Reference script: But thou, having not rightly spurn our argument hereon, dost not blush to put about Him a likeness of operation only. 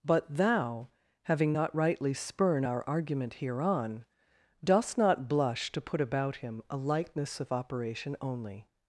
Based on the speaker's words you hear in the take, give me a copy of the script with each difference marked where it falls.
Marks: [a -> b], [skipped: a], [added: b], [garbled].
But thou, having not rightly spurn our argument hereon, dost not blush to put about Him a likeness of operation only.